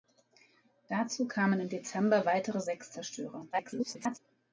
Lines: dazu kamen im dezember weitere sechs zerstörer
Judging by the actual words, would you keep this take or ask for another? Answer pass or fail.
fail